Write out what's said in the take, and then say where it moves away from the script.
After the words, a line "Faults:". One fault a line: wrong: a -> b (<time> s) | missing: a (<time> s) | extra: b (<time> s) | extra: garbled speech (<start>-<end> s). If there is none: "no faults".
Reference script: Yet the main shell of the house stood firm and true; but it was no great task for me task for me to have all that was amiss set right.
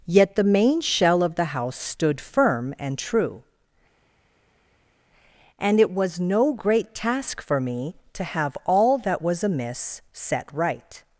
Yet the main shell of the house stood firm and true; and it was no great task for me to have all that was amiss set right.
Faults:
wrong: but -> and (5.6 s)
missing: task for me (8.0 s)